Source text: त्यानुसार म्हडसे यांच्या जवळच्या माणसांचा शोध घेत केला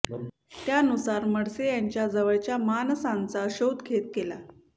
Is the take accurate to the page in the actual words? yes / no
yes